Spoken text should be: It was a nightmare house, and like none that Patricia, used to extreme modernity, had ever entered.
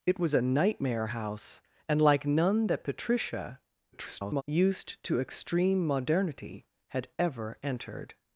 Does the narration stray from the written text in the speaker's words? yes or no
yes